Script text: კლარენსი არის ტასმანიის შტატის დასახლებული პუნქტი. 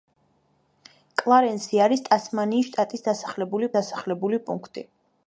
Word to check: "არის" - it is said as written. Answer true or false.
true